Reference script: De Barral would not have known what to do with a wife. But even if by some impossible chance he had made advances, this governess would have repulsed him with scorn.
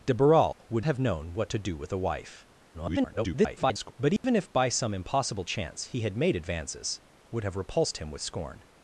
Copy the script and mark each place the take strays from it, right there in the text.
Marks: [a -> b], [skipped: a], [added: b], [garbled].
De Barral would [skipped: not] have known what to do with a wife. [garbled] But even if by some impossible chance he had made advances, [skipped: this governess] would have repulsed him with scorn.